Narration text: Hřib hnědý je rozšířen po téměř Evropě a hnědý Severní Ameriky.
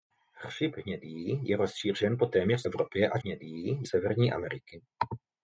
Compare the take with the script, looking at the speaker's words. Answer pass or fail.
pass